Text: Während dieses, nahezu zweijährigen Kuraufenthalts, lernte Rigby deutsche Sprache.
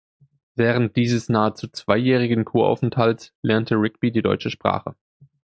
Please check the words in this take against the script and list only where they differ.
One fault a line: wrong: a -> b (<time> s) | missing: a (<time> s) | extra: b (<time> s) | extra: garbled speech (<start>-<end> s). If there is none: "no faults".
extra: die (4.1 s)